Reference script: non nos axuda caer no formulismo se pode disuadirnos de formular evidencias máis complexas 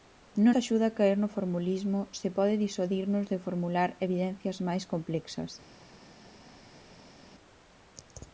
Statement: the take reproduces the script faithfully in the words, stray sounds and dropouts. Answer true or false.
false